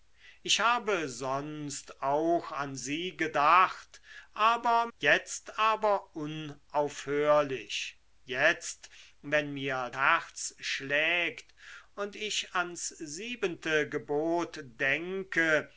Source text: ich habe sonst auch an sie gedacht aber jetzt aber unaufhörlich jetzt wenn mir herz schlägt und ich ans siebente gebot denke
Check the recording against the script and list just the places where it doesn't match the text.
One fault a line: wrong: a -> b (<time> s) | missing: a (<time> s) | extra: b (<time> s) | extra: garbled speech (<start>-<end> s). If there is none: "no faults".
no faults